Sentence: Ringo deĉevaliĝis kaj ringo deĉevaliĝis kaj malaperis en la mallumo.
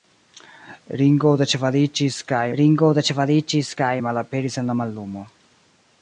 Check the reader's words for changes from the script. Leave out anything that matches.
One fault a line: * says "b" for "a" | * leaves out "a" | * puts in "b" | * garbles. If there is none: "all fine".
all fine